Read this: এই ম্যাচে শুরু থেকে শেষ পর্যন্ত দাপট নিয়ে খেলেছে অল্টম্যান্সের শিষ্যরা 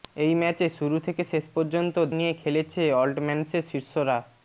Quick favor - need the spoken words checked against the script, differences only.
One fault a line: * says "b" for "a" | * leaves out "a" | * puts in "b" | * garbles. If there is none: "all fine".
* leaves out "দাপট"